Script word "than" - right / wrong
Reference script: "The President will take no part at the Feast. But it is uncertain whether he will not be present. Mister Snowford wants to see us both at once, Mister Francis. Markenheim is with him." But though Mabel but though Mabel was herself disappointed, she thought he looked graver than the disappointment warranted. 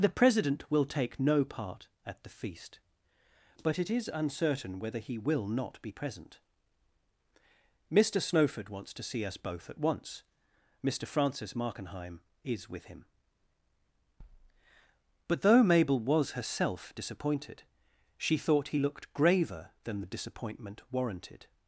right